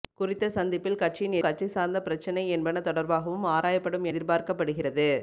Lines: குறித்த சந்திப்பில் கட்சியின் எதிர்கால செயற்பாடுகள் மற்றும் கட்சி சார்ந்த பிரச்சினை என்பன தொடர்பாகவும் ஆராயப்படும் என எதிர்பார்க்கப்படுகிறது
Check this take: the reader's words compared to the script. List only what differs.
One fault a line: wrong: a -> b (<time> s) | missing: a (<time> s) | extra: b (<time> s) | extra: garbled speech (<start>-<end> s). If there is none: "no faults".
missing: எதிர்கால செயற்பாடுகள் மற்றும் (1.4 s)
missing: என (4.1 s)